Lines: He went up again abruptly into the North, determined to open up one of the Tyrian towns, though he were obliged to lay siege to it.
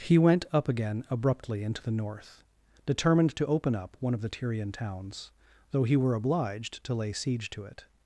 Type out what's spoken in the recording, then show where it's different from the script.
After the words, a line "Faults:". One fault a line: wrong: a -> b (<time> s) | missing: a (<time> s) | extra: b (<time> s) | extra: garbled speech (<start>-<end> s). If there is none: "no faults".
He went up again abruptly into the North, determined to open up one of the Tyrian towns, though he were obliged to lay siege to it.
Faults:
no faults